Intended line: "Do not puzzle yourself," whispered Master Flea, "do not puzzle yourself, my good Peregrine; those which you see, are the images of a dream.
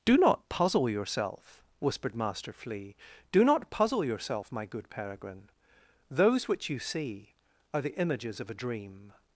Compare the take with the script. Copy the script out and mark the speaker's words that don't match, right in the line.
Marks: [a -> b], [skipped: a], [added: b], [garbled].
"Do not puzzle yourself," whispered Master Flea, "do not puzzle yourself, my good Peregrine; those which you see, are the images of a dream.